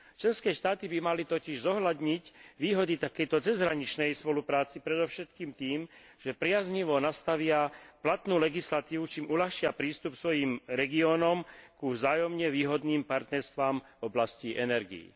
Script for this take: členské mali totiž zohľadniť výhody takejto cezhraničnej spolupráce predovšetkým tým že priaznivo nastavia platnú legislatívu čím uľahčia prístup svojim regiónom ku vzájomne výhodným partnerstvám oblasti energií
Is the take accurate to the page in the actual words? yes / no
no